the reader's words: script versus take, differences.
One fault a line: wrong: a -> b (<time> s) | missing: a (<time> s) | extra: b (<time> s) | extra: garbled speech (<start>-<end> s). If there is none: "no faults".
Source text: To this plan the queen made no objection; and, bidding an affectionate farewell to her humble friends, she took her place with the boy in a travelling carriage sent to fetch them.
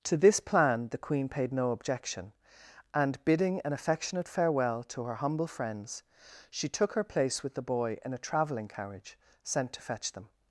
wrong: made -> paid (1.3 s)